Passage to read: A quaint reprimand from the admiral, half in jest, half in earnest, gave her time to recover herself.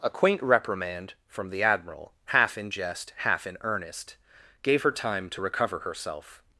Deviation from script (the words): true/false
false